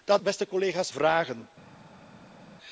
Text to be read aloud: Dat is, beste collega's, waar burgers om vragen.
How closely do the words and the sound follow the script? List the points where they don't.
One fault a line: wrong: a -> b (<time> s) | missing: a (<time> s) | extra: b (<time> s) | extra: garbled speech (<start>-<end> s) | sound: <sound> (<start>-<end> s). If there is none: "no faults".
missing: is (0.2 s)
missing: waar burgers om (0.9 s)